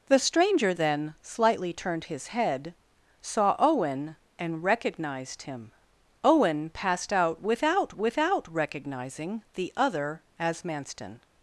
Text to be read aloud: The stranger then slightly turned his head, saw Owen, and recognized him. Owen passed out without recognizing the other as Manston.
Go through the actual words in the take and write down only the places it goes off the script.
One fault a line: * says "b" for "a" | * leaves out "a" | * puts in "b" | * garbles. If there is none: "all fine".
* puts in "without"